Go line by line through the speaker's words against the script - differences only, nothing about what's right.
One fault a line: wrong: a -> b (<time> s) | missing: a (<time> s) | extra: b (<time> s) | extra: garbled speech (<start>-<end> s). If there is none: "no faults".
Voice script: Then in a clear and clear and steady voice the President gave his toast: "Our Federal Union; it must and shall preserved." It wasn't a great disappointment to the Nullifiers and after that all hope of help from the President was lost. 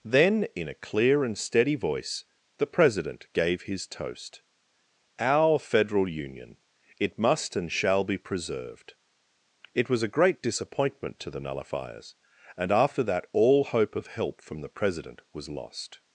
missing: clear and (1.4 s)
extra: be (8.0 s)
wrong: wasn't -> was (9.9 s)